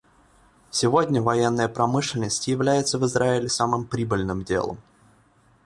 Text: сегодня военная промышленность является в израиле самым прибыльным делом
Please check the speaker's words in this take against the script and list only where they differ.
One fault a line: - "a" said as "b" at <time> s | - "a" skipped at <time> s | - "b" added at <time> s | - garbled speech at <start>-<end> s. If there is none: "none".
none